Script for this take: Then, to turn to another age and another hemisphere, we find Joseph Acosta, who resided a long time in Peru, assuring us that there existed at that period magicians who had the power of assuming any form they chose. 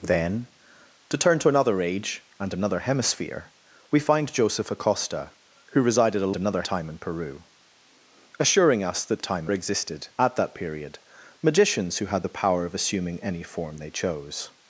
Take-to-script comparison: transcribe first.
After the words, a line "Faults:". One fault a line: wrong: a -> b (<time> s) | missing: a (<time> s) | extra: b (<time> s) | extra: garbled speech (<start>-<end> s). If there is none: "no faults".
Then, to turn to another age and another hemisphere, we find Joseph Acosta, who resided a another time in Peru, assuring us that time existed at that period magicians who had the power of assuming any form they chose.
Faults:
wrong: long -> another (6.4 s)
wrong: there -> time (9.2 s)